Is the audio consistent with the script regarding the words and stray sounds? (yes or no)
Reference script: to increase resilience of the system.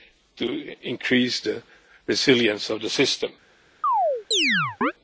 no